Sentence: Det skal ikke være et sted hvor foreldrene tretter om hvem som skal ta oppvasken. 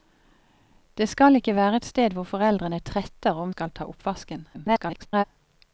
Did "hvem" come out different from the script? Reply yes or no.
yes